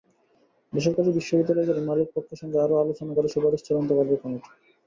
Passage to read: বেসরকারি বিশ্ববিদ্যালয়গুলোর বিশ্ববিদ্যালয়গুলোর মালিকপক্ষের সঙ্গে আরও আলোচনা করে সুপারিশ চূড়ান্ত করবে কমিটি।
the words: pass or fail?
fail